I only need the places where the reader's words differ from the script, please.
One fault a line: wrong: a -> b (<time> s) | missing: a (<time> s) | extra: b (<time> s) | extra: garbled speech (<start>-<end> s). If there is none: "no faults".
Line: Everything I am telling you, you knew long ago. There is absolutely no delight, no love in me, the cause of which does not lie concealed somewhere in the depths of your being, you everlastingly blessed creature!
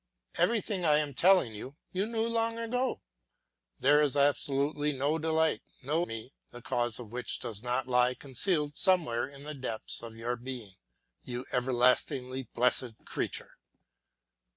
missing: love in (6.0 s)